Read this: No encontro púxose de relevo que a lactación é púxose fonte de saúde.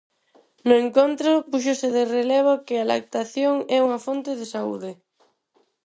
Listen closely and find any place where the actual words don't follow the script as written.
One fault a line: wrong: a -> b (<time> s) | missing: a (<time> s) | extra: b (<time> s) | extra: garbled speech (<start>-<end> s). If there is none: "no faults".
wrong: púxose -> unha (3.9 s)